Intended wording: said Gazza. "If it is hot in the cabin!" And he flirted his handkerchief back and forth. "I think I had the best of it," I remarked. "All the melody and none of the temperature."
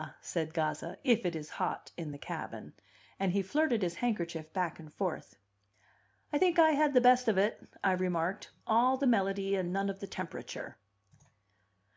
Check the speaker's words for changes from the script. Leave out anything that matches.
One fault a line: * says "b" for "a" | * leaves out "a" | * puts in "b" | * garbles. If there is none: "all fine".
all fine